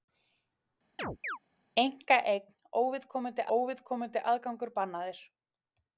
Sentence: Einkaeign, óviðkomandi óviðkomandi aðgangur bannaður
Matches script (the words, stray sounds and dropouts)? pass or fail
fail